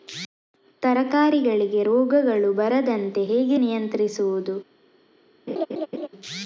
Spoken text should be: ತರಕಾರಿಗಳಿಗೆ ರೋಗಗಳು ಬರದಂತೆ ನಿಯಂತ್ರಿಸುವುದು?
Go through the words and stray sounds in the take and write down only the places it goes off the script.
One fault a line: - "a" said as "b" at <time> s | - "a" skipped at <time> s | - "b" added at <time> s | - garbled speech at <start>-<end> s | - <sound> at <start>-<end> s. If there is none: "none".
- "ಹೇಗೆ" added at 3.2 s
- laugh at 5.5-6.1 s